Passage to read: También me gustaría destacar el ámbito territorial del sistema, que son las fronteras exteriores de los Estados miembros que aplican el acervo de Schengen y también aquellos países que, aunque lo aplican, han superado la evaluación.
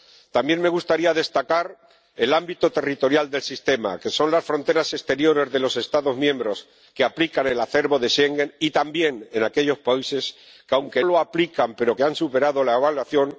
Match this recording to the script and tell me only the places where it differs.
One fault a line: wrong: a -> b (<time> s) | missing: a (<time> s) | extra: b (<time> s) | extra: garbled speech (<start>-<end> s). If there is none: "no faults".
no faults